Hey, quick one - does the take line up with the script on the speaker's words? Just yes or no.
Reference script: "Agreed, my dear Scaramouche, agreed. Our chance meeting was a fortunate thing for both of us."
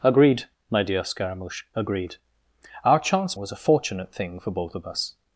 no